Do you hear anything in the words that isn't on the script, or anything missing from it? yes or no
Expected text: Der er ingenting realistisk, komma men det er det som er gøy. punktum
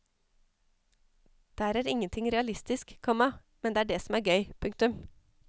no